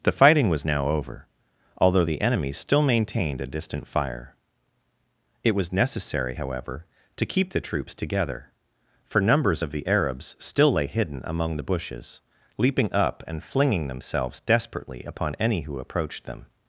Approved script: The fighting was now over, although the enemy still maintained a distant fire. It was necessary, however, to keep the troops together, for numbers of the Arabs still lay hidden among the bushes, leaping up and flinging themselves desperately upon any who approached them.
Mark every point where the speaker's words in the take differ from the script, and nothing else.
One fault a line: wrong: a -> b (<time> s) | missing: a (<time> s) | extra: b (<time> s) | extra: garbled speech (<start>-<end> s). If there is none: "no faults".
no faults